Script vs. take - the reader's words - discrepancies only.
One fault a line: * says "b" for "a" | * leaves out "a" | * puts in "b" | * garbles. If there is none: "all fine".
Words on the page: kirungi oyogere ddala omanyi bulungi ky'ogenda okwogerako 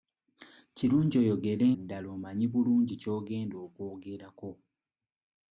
all fine